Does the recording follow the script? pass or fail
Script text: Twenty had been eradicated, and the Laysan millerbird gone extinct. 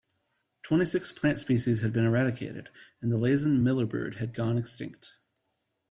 fail